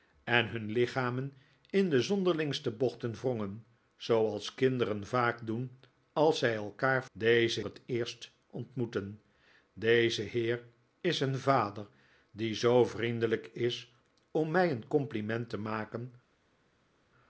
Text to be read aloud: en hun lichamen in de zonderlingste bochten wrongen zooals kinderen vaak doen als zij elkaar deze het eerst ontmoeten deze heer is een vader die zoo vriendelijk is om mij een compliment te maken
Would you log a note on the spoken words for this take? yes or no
no